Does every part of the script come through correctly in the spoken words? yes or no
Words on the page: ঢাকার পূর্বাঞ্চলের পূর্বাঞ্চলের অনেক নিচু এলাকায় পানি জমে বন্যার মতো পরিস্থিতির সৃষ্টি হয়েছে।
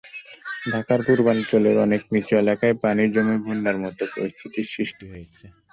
no